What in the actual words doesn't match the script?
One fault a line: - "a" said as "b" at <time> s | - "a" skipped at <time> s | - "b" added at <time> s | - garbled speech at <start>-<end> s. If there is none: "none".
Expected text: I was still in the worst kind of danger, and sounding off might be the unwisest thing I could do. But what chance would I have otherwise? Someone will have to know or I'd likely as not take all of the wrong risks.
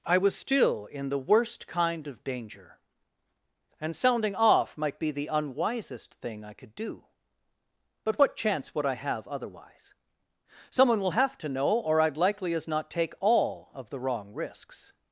none